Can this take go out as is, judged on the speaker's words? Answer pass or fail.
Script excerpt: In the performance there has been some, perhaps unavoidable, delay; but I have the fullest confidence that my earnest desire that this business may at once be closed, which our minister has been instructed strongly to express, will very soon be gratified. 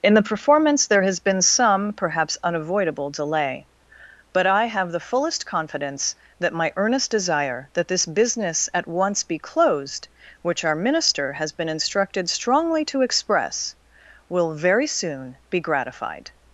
fail